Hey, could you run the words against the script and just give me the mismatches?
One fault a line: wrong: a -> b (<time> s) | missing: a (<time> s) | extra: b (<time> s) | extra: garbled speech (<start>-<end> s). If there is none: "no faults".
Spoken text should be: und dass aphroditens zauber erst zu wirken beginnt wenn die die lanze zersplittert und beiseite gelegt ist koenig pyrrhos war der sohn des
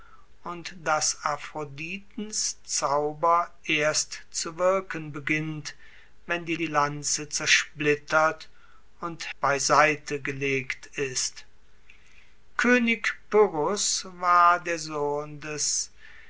no faults